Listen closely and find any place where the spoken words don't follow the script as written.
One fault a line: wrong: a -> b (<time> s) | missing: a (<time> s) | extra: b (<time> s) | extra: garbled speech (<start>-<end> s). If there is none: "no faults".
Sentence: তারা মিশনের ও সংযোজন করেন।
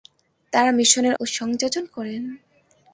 no faults